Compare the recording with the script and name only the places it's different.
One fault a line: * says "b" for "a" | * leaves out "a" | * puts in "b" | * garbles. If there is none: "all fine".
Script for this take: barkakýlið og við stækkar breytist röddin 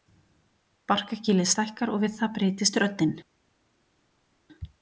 * puts in "stækkar"
* says "það" for "stækkar"